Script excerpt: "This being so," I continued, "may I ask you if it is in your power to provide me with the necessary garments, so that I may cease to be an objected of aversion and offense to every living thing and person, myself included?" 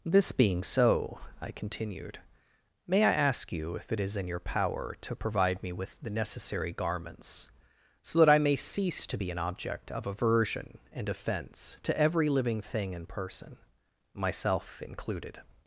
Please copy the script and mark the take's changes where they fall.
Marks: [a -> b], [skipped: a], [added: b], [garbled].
"This being so," I continued, "may I ask you if it is in your power to provide me with the necessary garments, so that I may cease to be an [objected -> object] of aversion and offense to every living thing and person, myself included?"